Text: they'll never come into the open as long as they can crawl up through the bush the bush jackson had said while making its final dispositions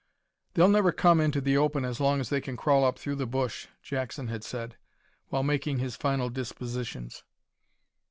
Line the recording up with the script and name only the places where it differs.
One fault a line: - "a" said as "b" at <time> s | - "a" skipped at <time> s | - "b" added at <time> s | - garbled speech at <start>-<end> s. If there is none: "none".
- "the bush" skipped at 3.7 s
- "its" said as "his" at 5.8 s